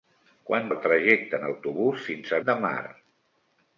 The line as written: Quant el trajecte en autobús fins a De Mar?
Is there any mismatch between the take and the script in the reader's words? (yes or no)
no